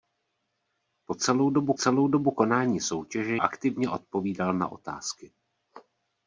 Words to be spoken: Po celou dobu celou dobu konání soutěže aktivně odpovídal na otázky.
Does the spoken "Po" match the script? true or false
true